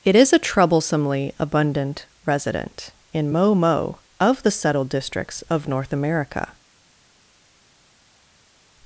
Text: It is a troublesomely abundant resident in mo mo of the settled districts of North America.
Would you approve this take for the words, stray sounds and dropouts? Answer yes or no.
yes